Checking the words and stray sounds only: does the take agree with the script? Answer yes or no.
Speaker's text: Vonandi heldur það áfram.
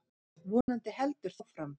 no